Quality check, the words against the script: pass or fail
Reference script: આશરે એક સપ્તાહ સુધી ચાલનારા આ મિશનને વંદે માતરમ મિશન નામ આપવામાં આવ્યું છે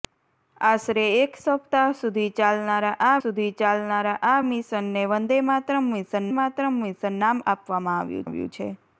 fail